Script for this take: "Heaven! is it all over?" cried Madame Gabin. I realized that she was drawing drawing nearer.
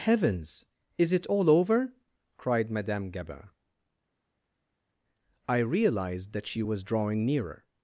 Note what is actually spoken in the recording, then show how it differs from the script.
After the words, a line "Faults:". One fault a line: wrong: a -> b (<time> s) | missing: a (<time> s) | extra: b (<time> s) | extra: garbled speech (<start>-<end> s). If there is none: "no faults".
"Heavens! is it all over?" cried Madame Gabin. I realized that she was drawing nearer.
Faults:
wrong: Heaven -> Heavens (0.0 s)
missing: drawing (7.2 s)